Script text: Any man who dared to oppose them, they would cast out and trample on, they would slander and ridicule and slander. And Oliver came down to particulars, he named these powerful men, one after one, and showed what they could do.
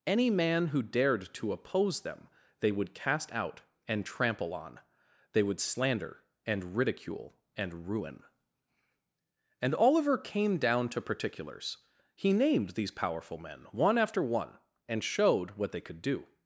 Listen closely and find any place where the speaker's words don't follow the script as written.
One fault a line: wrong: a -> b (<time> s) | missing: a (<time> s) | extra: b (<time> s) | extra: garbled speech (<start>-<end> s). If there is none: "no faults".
wrong: slander -> ruin (7.9 s)